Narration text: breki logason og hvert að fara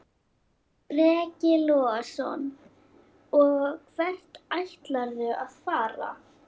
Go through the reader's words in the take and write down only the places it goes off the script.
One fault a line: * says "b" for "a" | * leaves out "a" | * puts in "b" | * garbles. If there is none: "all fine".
* puts in "ætlarðu"